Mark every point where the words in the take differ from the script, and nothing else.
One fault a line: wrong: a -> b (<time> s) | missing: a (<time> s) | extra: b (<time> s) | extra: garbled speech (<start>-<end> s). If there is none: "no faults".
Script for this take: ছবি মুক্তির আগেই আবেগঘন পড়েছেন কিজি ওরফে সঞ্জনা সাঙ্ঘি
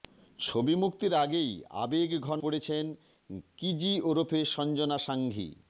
no faults